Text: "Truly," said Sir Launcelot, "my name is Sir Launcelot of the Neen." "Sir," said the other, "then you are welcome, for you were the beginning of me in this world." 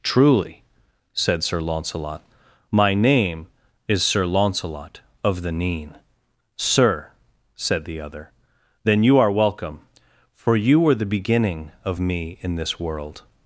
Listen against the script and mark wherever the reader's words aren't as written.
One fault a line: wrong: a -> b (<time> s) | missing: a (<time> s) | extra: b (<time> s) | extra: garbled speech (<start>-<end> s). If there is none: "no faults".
no faults